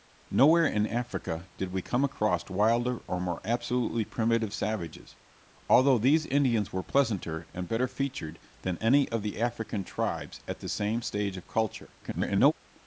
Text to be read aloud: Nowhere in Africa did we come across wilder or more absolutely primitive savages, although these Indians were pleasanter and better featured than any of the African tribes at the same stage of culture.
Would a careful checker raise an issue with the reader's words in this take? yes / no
yes